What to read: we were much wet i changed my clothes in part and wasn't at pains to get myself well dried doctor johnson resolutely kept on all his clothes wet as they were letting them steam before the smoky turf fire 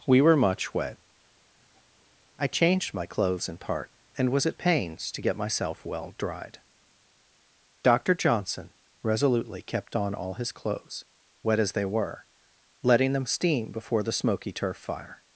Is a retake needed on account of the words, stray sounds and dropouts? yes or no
yes